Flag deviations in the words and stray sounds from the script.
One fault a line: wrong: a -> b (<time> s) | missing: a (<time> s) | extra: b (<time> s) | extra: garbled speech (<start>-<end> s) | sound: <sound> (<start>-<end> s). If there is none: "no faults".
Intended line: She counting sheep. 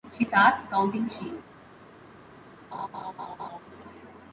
extra: starts (0.2 s)
sound: laugh (2.7-3.6 s)